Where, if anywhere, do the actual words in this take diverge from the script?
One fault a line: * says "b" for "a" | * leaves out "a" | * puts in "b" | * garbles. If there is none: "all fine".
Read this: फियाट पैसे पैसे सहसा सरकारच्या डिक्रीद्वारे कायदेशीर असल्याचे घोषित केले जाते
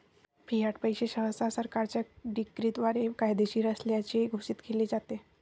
* leaves out "पैसे"